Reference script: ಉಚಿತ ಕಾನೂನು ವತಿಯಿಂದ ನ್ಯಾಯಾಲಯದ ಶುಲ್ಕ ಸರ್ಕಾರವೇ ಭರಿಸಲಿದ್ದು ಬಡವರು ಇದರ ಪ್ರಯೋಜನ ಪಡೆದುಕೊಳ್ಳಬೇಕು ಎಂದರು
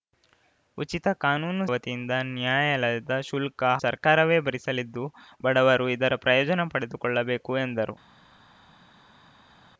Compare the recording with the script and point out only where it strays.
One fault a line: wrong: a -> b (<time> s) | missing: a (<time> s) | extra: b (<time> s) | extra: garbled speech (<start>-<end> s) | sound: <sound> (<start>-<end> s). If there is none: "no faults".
no faults